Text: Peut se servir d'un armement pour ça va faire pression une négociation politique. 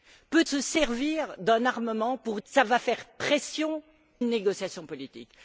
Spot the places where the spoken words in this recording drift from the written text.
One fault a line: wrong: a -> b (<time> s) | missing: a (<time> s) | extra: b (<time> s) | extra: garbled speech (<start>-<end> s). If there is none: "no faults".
no faults